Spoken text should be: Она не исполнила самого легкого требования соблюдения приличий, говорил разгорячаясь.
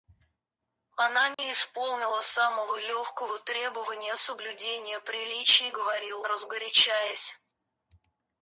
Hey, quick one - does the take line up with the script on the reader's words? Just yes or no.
yes